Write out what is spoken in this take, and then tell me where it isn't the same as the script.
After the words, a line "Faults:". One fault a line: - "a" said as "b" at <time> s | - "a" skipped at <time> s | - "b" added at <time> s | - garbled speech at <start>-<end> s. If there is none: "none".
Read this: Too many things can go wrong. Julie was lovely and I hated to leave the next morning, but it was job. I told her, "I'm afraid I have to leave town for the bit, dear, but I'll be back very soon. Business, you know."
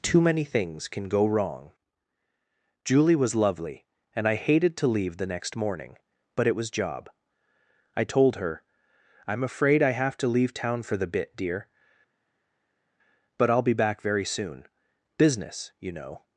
Too many things can go wrong. Julie was lovely and I hated to leave the next morning, but it was job. I told her, "I'm afraid I have to leave town for the bit, dear, but I'll be back very soon. Business, you know."
Faults:
none